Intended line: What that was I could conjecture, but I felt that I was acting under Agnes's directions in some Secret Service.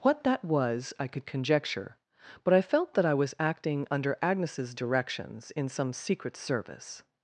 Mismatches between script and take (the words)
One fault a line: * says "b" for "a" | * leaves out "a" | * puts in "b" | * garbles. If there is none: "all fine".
all fine